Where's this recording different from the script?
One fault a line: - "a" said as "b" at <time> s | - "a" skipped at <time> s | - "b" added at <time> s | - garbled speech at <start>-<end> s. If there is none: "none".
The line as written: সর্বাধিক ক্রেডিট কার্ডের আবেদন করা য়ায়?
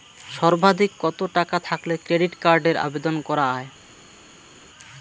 - "কত টাকা থাকলে" added at 1.0 s